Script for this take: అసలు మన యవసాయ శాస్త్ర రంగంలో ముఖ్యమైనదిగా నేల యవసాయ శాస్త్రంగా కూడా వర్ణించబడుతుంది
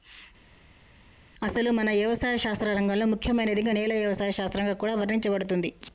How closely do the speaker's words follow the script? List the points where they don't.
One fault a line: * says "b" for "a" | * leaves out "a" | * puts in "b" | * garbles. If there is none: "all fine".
all fine